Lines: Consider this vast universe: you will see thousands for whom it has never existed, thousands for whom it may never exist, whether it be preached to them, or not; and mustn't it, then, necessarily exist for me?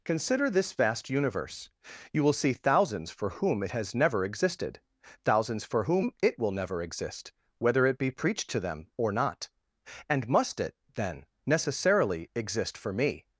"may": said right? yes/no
no